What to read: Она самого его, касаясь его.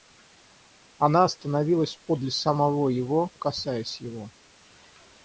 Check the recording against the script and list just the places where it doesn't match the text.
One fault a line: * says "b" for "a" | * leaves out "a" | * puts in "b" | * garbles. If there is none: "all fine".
* puts in "остановилась подле"